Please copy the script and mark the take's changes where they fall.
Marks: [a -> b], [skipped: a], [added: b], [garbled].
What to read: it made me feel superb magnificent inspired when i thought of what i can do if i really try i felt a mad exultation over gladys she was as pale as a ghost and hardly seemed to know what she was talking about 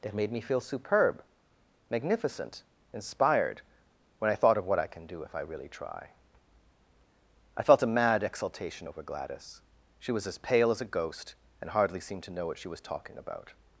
it made me feel superb magnificent inspired when i thought of what i can do if i really try i felt a mad exultation over gladys she was as pale as a ghost and hardly seemed to know what she was talking about